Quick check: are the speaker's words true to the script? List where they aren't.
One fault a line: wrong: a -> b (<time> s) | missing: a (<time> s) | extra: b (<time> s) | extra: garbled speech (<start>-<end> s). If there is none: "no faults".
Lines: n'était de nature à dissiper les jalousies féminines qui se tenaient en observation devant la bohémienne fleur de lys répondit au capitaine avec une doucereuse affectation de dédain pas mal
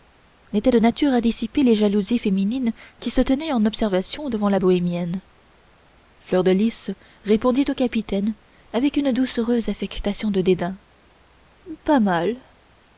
no faults